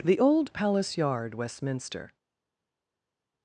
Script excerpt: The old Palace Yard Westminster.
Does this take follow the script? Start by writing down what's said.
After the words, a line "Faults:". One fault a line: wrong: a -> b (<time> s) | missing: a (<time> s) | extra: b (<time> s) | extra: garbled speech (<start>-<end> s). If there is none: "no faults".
The old Palace Yard Westminster.
Faults:
no faults